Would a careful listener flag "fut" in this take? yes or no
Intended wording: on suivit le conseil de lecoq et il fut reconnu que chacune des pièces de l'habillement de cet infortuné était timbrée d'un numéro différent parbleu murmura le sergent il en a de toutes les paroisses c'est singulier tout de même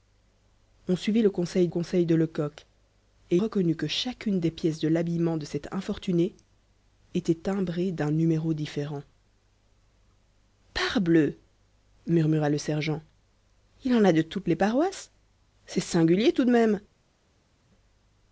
yes